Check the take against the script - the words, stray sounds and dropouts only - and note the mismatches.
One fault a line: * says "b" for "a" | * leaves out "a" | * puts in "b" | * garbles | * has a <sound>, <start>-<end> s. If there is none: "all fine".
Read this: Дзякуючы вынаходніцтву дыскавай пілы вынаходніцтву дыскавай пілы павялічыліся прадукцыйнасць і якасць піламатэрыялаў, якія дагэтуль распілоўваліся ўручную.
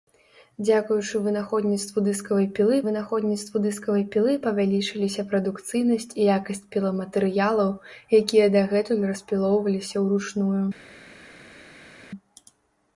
all fine